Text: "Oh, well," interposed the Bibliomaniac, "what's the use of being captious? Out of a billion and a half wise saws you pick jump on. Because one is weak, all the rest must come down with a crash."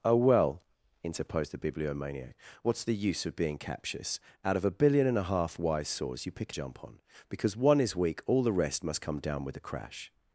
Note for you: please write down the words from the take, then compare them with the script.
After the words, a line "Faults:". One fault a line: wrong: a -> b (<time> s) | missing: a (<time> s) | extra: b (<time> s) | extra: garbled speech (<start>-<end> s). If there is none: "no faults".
"Oh, well," interposed the Bibliomaniac, "what's the use of being captious? Out of a billion and a half wise saws you pick jump on. Because one is weak, all the rest must come down with a crash."
Faults:
no faults